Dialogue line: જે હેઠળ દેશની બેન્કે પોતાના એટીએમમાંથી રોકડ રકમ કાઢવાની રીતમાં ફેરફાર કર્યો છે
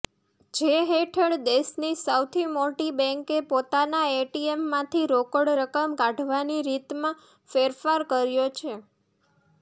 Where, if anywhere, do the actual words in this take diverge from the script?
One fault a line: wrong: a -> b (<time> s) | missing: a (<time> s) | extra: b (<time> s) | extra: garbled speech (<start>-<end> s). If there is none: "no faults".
extra: સૌથી મોટી (2.0 s)